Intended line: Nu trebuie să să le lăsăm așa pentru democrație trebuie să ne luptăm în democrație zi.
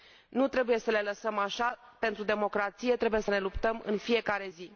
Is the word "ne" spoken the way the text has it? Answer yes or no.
yes